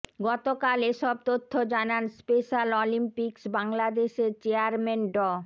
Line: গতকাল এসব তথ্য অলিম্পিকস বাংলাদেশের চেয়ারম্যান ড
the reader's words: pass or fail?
fail